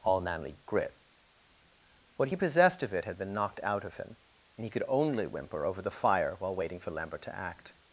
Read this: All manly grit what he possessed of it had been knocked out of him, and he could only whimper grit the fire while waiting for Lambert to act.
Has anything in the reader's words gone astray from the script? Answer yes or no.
yes